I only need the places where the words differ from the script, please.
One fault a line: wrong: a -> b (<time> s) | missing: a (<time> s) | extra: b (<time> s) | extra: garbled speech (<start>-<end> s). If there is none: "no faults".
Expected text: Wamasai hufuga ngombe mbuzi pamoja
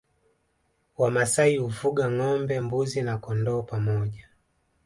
extra: na kondoo (3.0 s)